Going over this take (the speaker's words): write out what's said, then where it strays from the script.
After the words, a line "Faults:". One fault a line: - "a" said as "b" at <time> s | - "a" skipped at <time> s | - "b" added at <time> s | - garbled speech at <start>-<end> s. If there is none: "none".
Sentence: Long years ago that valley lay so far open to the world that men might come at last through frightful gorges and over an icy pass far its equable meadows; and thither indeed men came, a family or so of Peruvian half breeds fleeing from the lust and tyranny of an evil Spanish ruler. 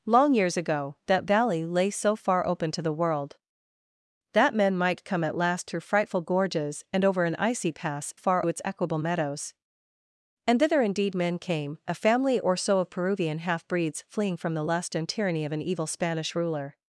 Long years ago that valley lay so far open to the world that men might come at last through frightful gorges and over an icy pass far its equable meadows; and thither indeed men came, a family or so of Peruvian half breeds fleeing from the lust and tyranny of an evil Spanish ruler.
Faults:
none